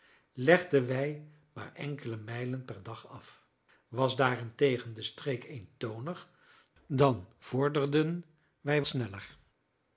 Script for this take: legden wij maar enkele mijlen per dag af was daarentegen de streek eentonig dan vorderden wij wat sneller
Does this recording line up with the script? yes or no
no